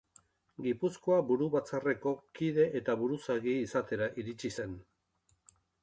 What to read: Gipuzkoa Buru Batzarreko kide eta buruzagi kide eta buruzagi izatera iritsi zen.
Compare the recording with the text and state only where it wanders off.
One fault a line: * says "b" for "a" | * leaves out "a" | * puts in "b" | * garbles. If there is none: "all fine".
* leaves out "kide eta buruzagi"